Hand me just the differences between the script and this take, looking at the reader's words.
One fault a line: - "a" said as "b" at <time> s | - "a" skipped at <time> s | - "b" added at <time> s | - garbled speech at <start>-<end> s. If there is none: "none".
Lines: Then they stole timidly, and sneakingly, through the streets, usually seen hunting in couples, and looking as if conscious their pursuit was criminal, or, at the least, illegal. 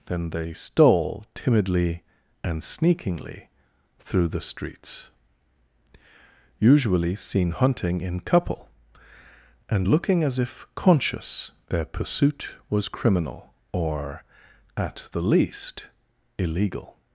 - "couples" said as "couple" at 8.2 s